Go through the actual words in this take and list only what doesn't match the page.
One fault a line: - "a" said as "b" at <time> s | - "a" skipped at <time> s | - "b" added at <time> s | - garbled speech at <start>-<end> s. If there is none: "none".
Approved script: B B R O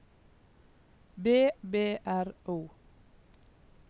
none